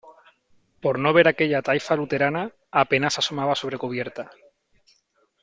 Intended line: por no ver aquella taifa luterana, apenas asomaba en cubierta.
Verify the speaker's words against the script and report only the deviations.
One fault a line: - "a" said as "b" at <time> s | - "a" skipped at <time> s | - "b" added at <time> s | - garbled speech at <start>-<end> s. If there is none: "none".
- "en" said as "sobre" at 3.5 s